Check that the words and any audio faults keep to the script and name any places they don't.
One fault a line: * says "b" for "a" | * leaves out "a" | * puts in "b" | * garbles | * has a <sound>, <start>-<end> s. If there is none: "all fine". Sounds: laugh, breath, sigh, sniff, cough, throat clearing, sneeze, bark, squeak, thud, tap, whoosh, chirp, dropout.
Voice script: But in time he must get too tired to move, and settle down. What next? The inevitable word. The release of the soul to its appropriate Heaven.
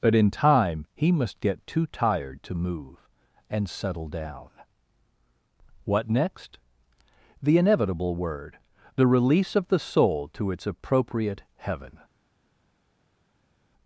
all fine